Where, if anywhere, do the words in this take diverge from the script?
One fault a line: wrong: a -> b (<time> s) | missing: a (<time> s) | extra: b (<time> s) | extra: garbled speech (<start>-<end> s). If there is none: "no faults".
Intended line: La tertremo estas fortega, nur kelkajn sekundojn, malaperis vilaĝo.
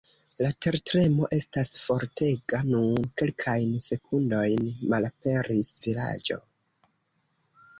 no faults